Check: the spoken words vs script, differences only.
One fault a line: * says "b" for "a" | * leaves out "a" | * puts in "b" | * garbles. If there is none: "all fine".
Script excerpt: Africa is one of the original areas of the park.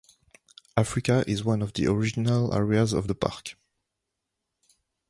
all fine